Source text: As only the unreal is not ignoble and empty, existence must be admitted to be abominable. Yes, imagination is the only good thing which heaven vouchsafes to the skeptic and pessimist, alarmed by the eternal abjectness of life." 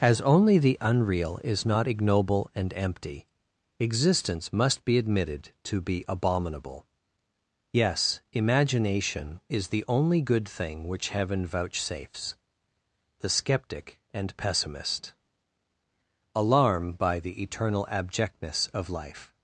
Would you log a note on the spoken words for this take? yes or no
yes